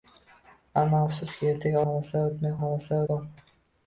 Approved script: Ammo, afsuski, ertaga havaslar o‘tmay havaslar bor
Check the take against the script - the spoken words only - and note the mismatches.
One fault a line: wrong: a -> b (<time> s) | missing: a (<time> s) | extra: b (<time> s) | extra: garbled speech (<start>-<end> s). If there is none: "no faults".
no faults